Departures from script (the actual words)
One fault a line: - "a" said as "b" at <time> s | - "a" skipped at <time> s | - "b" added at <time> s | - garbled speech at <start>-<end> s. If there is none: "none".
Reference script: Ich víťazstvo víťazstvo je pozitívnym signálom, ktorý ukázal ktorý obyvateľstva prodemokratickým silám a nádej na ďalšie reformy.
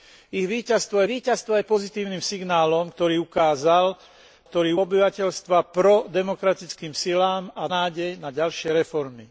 none